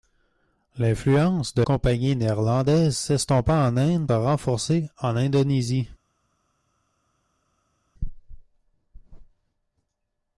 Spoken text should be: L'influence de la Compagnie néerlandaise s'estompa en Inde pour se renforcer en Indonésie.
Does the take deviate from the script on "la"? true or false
true